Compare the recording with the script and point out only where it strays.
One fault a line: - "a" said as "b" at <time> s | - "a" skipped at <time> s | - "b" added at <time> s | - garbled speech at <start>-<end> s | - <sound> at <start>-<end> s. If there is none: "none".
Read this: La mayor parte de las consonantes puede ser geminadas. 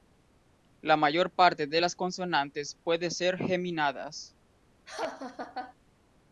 - laugh at 4.9-5.7 s